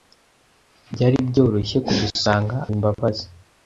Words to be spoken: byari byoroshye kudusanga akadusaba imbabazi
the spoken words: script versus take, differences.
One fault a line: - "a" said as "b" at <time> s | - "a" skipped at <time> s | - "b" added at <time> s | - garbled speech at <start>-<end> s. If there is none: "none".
- "akadusaba" skipped at 2.6 s